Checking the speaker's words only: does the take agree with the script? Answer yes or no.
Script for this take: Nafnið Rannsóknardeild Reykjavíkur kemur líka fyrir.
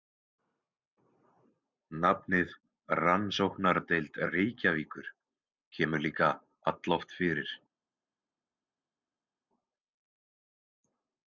no